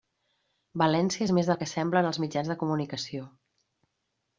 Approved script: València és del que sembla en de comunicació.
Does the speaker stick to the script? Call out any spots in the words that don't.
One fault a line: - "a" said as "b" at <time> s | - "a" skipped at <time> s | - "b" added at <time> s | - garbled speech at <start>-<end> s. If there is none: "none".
- "més" added at 1.4 s
- "els mitjans" added at 2.1 s